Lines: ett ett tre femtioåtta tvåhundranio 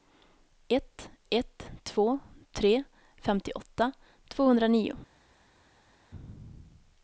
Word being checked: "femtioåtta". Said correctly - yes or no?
yes